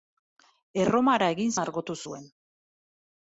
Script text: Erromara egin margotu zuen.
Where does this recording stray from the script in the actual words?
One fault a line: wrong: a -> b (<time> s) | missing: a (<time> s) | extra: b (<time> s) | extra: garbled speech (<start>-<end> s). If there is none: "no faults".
no faults